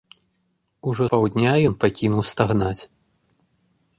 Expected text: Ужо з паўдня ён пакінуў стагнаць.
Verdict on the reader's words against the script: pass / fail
fail